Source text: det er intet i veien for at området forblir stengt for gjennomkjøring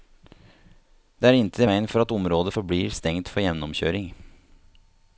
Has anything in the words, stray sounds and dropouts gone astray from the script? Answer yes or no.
no